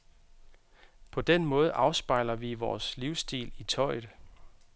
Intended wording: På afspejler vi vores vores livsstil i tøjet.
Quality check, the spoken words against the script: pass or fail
fail